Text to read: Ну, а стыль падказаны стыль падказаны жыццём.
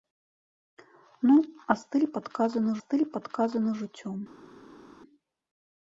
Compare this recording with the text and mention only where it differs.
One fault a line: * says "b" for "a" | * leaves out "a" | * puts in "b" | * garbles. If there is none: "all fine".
all fine